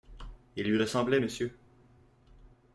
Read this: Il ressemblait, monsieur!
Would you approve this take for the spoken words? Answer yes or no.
no